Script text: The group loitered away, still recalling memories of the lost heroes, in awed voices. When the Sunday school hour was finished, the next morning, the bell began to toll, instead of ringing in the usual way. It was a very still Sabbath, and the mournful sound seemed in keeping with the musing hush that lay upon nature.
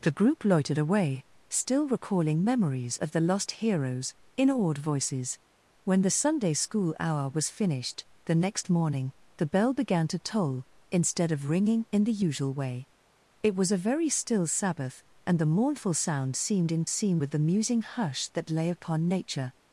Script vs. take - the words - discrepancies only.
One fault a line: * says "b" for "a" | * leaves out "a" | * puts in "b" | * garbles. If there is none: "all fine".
* says "seemed" for "keeping"